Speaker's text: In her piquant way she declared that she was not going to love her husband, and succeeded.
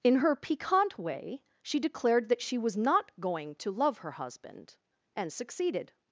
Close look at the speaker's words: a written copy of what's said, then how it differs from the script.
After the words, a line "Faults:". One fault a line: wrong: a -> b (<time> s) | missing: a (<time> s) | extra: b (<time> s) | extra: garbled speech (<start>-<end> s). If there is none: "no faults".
In her piquant way she declared that she was not going to love her husband, and succeeded.
Faults:
no faults